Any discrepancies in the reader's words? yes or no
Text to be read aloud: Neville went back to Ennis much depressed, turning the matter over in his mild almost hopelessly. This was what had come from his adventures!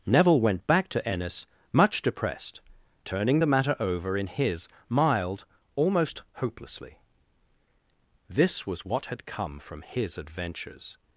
no